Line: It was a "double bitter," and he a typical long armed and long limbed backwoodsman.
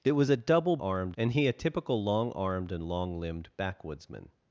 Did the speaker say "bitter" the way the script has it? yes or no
no